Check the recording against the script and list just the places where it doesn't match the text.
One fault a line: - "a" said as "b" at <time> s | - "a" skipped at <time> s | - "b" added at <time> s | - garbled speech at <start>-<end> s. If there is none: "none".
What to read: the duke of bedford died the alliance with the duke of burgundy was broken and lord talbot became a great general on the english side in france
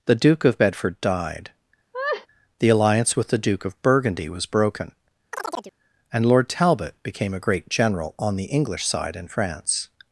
none